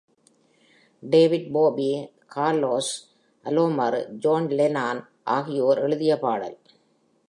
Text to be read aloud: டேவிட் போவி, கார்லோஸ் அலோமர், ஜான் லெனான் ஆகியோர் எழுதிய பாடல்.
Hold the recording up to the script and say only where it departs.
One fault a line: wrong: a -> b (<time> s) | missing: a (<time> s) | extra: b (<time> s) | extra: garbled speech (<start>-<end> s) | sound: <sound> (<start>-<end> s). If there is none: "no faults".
no faults